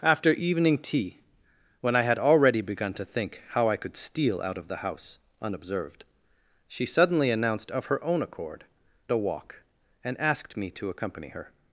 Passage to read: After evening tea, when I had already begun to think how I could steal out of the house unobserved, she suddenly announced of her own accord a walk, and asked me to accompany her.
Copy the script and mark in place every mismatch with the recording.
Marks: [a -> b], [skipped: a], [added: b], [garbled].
After evening tea, when I had already begun to think how I could steal out of the house unobserved, she suddenly announced of her own accord a walk, and asked me to accompany her.